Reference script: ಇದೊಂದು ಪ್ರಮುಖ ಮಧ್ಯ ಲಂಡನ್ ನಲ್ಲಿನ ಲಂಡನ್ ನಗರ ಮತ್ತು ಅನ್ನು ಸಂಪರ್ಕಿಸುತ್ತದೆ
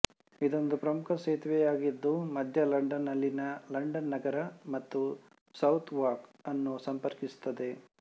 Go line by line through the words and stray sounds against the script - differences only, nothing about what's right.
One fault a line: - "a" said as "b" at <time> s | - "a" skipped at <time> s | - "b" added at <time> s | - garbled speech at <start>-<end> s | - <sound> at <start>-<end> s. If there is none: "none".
- "ಸೇತುವೆಯಾಗಿದ್ದು" added at 1.2 s
- "ಸೌತ್ ವಾರ್ಕ್" added at 5.5 s